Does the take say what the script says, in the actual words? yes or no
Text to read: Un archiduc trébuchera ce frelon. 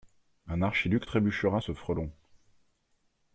yes